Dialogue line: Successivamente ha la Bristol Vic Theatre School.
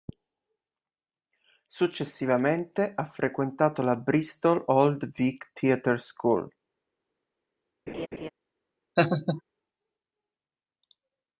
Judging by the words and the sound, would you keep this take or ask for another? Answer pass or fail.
fail